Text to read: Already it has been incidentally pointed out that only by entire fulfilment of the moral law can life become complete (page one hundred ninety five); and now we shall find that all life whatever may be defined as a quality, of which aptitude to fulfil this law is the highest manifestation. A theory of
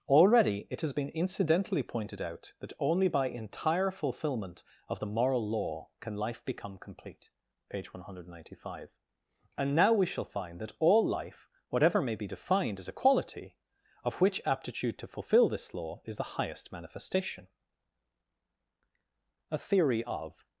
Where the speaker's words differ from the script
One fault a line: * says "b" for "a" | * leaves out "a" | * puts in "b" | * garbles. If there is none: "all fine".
all fine